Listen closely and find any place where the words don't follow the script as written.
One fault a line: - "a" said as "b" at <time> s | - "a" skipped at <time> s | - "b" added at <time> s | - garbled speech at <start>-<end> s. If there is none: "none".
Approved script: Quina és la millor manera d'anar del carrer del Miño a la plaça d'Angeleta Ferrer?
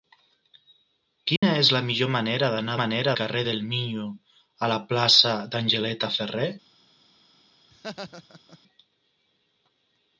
- "del" said as "manera" at 2.8 s